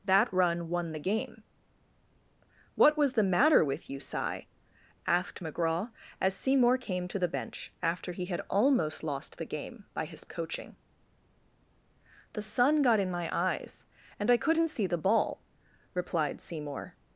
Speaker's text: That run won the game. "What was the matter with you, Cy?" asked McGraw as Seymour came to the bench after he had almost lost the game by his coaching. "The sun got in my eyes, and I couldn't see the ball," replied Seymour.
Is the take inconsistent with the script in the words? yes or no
no